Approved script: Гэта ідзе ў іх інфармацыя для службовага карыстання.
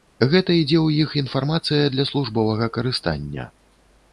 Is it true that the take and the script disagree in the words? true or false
false